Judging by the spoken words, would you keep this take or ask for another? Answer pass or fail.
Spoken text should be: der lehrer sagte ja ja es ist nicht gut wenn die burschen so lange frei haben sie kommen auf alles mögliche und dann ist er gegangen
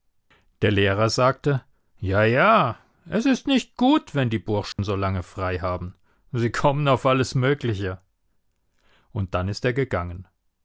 pass